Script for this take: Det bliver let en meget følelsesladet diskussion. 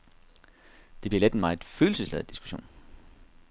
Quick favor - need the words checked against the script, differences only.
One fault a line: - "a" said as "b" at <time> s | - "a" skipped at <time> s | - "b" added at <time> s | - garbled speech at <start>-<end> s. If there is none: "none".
none